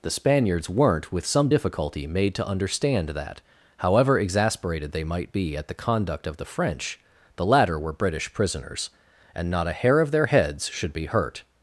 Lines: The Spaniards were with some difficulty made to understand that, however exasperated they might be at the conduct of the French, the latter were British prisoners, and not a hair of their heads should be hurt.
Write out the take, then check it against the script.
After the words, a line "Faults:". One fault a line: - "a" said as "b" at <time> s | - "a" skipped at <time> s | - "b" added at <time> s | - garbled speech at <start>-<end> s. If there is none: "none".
The Spaniards weren't with some difficulty made to understand that, however exasperated they might be at the conduct of the French, the latter were British prisoners, and not a hair of their heads should be hurt.
Faults:
- "were" said as "weren't" at 0.7 s